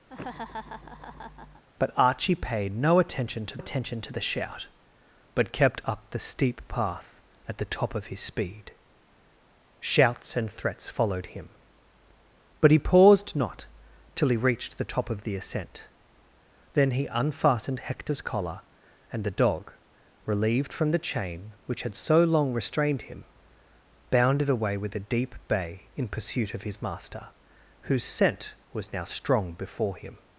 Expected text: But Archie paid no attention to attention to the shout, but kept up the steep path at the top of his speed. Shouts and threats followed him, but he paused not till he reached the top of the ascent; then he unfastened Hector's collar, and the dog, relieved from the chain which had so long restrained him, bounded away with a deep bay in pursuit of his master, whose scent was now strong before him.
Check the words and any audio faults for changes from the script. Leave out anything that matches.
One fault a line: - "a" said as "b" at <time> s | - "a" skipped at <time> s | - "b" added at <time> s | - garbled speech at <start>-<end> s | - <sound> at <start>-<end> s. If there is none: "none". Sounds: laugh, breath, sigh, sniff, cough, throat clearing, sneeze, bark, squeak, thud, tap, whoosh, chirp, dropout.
- laugh at 0.1-1.6 s